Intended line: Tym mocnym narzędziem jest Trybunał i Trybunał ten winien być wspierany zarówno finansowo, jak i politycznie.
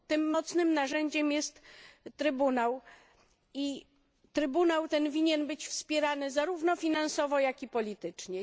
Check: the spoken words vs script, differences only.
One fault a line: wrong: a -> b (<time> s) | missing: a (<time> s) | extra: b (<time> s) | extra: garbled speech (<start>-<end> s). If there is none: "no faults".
no faults